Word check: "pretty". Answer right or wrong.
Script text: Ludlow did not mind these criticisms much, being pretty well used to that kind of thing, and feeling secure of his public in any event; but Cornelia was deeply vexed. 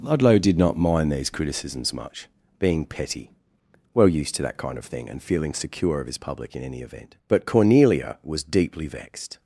wrong